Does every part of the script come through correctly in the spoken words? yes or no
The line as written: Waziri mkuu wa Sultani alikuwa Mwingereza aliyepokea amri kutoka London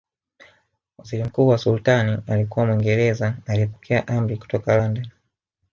yes